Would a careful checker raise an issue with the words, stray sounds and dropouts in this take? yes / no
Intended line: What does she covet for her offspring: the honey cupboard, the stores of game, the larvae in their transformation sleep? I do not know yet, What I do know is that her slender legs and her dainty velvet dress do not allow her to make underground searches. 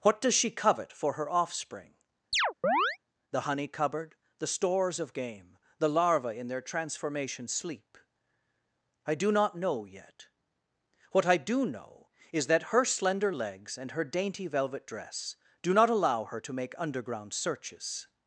yes